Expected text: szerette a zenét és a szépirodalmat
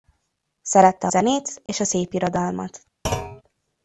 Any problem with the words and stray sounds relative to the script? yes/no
yes